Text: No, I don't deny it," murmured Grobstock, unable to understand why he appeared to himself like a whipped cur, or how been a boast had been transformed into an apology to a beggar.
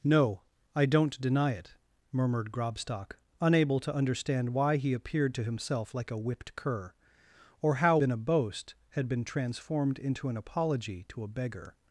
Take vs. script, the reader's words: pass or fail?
pass